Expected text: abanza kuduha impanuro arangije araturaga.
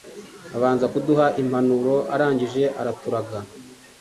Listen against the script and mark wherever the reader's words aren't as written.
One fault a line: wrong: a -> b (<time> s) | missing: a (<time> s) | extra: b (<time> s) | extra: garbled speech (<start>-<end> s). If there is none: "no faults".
no faults